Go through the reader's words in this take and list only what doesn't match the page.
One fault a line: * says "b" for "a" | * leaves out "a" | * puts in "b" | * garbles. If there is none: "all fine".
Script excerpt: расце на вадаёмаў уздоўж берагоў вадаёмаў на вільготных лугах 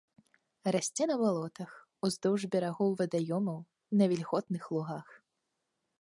* says "балотах" for "вадаёмаў"